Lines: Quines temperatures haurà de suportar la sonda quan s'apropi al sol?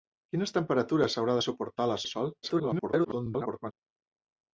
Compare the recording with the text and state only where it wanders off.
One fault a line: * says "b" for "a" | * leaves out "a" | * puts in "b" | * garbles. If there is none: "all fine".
* leaves out "sonda quan s'apropi"
* garbles